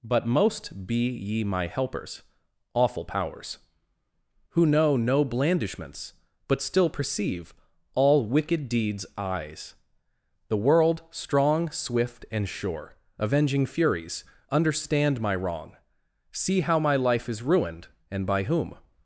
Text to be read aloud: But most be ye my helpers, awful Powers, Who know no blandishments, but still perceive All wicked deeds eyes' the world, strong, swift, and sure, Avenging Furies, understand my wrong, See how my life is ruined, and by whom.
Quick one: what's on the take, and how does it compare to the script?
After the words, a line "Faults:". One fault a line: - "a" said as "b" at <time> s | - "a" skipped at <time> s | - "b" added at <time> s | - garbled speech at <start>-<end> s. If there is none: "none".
But most be ye my helpers, awful Powers, Who know no blandishments, but still perceive All wicked deeds eyes' the world, strong, swift, and sure, Avenging Furies, understand my wrong, See how my life is ruined, and by whom.
Faults:
none